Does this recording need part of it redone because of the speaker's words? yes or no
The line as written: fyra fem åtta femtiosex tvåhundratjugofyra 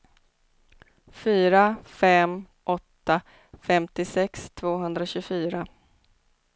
no